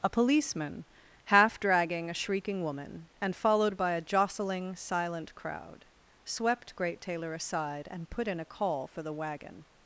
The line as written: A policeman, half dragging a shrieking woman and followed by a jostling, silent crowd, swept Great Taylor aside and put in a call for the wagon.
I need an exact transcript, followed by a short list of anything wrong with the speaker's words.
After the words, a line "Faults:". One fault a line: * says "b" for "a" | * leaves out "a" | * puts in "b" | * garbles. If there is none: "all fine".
A policeman, half dragging a shrieking woman and followed by a jostling, silent crowd, swept Great Taylor aside and put in a call for the wagon.
Faults:
all fine